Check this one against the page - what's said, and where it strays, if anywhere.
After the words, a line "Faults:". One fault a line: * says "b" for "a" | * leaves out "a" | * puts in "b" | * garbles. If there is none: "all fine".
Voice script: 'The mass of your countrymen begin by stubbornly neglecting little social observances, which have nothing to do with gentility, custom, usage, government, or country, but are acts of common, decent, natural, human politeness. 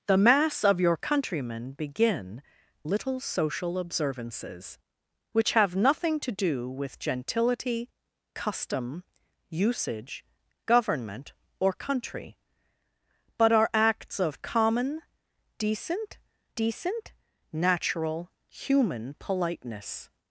'The mass of your countrymen begin little social observances, which have nothing to do with gentility, custom, usage, government, or country, but are acts of common, decent decent, natural, human politeness.
Faults:
* leaves out "by stubbornly neglecting"
* puts in "decent"